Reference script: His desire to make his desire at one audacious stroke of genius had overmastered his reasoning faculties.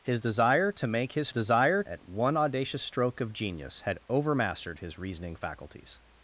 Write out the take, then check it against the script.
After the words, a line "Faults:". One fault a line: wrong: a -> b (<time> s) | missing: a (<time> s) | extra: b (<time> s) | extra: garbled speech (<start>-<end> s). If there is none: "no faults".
His desire to make his desire at one audacious stroke of genius had overmastered his reasoning faculties.
Faults:
no faults